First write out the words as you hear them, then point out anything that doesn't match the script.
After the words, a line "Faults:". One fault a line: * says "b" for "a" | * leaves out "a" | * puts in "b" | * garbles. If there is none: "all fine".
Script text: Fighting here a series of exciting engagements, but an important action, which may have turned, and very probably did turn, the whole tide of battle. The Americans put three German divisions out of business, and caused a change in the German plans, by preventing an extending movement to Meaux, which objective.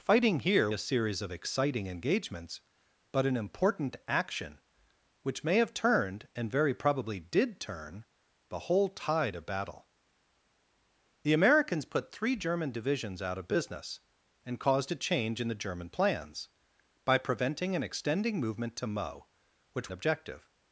Fighting here a series of exciting engagements, but an important action, which may have turned, and very probably did turn, the whole tide of battle. The Americans put three German divisions out of business, and caused a change in the German plans, by preventing an extending movement to Meaux, which objective.
Faults:
all fine